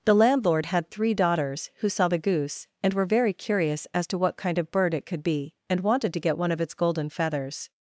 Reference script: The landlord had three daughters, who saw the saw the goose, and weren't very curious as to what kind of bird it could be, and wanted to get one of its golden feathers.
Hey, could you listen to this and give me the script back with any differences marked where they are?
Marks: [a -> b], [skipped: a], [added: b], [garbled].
The landlord had three daughters, who saw the [skipped: saw the] goose, and [weren't -> were] very curious as to what kind of bird it could be, and wanted to get one of its golden feathers.